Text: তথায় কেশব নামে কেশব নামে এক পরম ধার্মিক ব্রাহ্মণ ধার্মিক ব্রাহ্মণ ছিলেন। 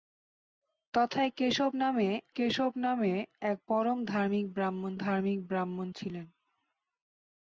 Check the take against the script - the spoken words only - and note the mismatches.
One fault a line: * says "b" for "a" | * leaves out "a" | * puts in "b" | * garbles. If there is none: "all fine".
all fine